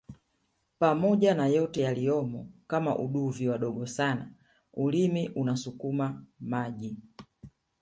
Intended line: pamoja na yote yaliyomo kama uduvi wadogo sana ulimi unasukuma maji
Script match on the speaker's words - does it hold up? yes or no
yes